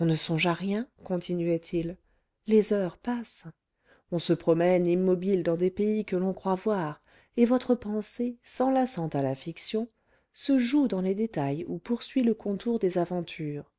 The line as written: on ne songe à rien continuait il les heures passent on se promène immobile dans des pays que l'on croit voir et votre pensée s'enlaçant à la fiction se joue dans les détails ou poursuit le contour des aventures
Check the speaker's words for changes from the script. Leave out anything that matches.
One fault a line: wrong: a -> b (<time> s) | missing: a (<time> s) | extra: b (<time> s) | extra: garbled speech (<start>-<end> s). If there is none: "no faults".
no faults